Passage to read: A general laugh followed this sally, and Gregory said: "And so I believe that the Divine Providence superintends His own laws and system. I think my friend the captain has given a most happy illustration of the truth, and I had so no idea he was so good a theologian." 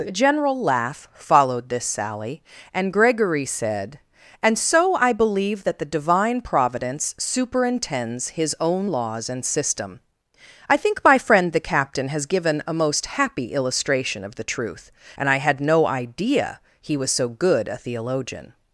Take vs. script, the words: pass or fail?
fail